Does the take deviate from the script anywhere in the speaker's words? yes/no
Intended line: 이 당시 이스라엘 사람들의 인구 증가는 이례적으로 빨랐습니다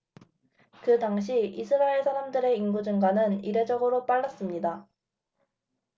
yes